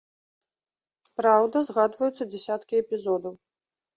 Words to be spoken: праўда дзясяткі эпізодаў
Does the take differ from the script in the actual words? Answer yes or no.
yes